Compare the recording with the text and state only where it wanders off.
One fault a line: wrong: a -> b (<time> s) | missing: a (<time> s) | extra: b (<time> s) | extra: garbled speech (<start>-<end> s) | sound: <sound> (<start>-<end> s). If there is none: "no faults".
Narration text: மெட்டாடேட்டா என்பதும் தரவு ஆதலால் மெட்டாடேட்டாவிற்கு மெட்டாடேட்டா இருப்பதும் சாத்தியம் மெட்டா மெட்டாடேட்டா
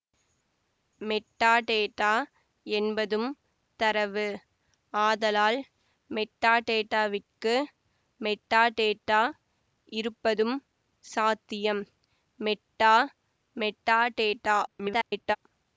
extra: garbled speech (14.7-15.4 s)